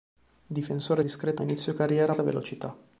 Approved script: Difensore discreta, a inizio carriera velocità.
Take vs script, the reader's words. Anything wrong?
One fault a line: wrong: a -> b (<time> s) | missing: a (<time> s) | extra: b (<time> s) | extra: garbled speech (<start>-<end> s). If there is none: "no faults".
no faults